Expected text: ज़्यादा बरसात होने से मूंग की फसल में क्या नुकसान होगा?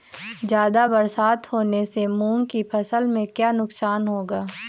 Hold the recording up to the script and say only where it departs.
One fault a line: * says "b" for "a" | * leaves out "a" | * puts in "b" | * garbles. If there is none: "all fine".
all fine